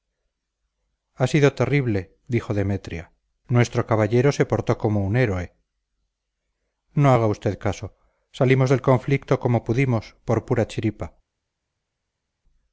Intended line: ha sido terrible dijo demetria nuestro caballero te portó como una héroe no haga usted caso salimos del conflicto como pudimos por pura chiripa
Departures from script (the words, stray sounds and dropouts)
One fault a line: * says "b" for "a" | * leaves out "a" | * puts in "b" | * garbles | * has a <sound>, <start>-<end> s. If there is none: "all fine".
* says "se" for "te"
* says "un" for "una"